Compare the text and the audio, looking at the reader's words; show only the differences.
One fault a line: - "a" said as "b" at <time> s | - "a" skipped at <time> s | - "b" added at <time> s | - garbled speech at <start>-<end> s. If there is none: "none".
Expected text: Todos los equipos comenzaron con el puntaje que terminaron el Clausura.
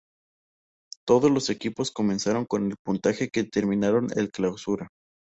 none